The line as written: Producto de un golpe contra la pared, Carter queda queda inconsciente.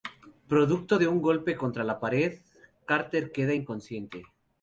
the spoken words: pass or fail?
fail